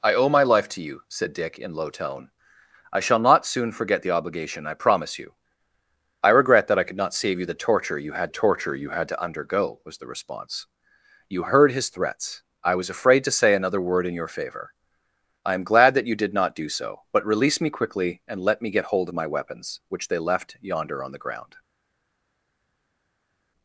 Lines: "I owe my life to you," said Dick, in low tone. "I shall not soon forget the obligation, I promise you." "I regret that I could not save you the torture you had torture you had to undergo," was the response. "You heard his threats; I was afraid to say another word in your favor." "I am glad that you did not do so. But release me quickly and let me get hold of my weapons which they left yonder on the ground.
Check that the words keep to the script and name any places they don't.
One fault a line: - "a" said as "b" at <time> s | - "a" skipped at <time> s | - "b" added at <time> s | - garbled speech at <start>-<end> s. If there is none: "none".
none